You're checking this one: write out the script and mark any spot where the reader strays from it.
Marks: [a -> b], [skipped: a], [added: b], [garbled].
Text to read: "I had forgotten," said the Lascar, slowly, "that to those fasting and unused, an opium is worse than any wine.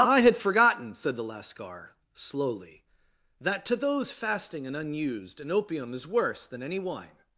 "I had forgotten," said the Lascar, slowly, "that to those fasting and unused, an opium is worse than any wine.